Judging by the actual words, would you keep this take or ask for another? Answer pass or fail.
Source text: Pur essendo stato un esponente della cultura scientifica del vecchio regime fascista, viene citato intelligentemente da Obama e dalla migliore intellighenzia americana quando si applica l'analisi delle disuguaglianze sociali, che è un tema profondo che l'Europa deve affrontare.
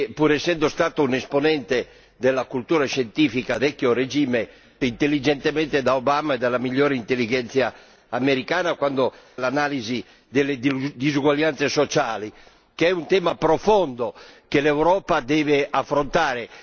fail